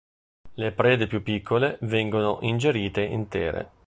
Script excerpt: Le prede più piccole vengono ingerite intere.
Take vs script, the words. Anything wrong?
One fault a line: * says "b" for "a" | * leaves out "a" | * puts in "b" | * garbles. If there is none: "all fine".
all fine